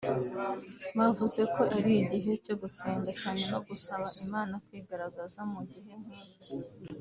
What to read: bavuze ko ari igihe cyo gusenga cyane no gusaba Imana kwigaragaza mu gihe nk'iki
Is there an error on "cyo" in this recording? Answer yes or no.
no